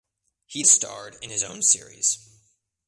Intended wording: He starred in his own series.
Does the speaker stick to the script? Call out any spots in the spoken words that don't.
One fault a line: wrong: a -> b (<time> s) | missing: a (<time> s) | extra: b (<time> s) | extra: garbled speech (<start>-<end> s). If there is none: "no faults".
no faults